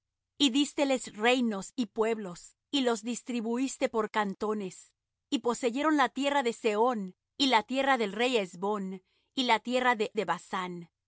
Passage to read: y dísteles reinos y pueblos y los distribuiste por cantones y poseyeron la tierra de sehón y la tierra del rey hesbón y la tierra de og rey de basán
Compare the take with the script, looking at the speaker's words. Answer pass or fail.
fail